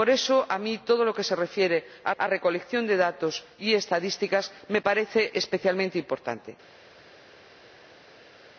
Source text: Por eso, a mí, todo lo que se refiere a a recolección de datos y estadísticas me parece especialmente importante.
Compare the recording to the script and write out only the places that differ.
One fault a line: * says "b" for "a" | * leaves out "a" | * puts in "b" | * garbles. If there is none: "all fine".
all fine